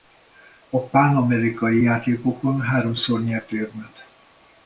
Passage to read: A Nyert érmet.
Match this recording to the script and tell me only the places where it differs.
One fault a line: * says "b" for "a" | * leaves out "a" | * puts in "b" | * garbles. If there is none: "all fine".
* puts in "Pánamerikai játékokon háromszor"